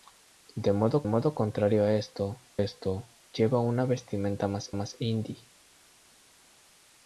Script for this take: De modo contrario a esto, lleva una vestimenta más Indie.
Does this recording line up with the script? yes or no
no